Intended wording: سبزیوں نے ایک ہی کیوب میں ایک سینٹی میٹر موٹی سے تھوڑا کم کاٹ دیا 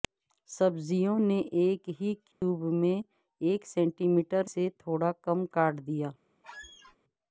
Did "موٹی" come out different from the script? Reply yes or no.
yes